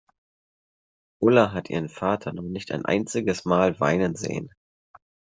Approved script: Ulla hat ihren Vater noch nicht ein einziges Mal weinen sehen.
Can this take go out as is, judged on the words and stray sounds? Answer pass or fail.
pass